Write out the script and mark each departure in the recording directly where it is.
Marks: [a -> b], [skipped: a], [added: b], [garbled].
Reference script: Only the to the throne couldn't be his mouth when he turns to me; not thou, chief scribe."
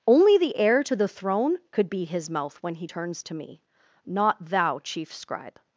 Only the [added: heir] to the throne [couldn't -> could] be his mouth when he turns to me; not thou, chief scribe."